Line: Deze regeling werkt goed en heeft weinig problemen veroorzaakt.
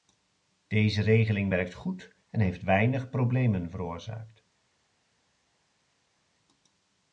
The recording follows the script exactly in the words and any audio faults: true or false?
true